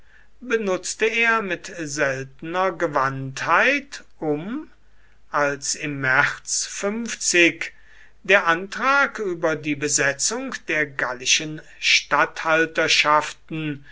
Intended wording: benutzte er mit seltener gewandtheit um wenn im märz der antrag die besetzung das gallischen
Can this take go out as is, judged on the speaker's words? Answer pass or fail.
fail